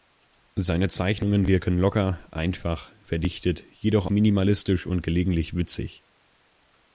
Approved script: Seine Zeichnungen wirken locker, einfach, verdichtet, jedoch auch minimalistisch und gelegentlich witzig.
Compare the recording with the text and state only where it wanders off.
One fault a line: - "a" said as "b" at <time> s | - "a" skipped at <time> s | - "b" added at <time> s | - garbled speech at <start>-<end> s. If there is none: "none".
- "auch" skipped at 4.1 s